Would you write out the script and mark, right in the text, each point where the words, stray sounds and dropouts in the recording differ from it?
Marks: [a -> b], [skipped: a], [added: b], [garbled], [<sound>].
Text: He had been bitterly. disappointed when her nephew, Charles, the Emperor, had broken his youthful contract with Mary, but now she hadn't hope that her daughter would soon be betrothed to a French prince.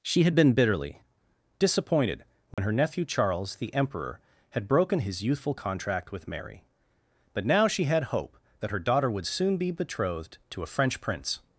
[He -> She] had been bitterly. disappointed when [dropout] her nephew, Charles, the Emperor, had broken his youthful contract with Mary, but now she [hadn't -> had] hope that her daughter would soon be betrothed to a French prince.